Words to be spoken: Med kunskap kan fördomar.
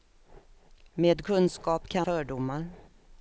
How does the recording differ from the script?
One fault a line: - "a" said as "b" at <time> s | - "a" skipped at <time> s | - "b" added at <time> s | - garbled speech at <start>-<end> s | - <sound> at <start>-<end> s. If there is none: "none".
none